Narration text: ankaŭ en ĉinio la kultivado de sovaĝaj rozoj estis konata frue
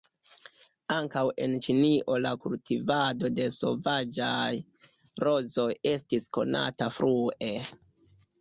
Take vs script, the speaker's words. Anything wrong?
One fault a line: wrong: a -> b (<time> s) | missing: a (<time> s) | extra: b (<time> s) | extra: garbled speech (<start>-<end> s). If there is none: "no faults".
no faults